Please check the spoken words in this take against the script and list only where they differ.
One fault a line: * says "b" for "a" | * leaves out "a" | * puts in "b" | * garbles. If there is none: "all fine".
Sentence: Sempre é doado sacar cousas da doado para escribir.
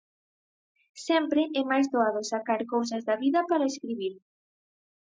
* puts in "máis"
* says "vida" for "doado"